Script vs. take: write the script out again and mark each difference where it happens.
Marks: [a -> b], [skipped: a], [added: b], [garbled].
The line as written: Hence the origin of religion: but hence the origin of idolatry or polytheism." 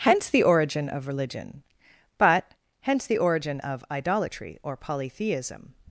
Hence the origin of religion: but hence the origin of idolatry or polytheism."